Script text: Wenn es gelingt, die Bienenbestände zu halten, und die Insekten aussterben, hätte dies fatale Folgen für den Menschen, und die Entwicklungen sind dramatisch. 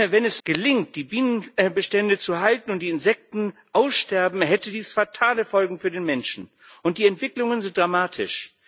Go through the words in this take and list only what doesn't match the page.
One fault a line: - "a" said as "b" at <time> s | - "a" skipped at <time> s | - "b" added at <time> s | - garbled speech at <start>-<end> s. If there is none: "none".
none